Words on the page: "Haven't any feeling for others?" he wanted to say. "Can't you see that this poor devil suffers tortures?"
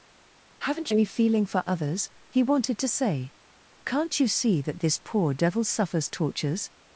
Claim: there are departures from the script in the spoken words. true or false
false